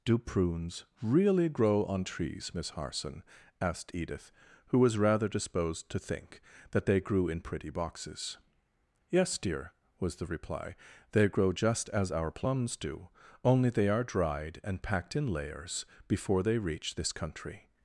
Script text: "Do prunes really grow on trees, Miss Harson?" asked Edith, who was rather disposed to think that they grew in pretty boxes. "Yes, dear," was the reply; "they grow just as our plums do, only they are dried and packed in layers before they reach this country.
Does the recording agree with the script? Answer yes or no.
yes